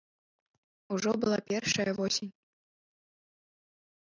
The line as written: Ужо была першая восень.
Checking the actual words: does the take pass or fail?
pass